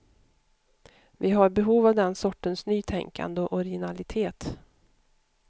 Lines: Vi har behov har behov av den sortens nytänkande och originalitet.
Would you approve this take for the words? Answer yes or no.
no